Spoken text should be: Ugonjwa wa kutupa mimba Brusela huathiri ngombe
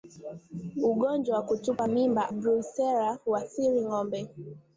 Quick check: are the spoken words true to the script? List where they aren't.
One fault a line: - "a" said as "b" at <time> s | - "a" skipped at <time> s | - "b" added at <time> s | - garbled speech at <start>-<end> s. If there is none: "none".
none